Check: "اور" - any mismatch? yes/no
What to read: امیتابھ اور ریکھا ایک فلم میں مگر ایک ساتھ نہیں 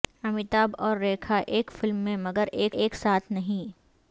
no